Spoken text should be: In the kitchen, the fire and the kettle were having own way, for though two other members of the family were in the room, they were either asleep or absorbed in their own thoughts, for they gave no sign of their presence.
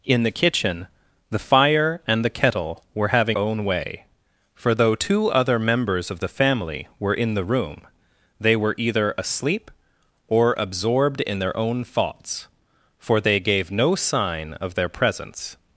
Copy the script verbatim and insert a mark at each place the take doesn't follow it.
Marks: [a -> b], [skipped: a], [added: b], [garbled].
In the kitchen, the fire and the kettle were having own way, for though two other members of the family were in the room, they were either asleep or absorbed in their own thoughts, for they gave no sign of their presence.